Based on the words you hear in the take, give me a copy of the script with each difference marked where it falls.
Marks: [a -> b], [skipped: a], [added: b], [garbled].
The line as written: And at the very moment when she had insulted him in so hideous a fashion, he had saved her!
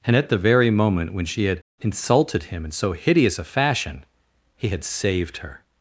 And at the very moment when she had insulted him in so hideous a fashion, he had saved her!